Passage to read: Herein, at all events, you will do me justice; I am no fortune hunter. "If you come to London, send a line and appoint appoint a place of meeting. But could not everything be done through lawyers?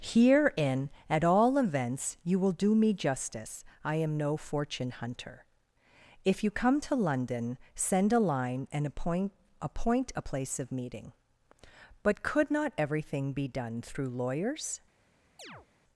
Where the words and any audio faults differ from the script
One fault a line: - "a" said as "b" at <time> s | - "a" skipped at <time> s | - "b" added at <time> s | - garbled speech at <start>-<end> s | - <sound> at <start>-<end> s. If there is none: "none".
- chirp at 15.4-15.7 s